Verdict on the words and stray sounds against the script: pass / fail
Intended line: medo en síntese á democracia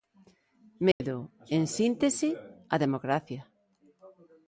fail